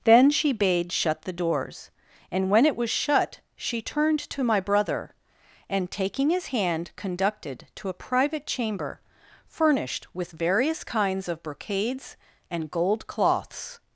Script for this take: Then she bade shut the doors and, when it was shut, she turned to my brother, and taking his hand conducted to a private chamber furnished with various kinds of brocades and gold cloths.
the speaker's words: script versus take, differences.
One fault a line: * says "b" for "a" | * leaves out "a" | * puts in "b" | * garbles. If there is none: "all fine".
all fine